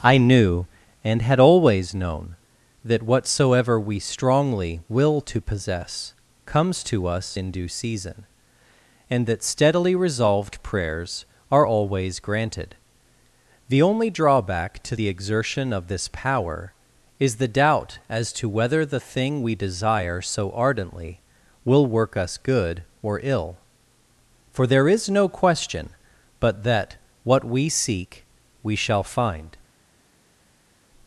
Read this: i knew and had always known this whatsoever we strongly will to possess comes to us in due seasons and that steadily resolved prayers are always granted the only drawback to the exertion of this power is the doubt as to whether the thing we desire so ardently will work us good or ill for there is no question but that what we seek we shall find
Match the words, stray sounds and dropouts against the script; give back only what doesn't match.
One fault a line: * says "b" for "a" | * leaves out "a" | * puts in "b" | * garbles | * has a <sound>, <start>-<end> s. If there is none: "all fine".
* says "that" for "this"
* says "season" for "seasons"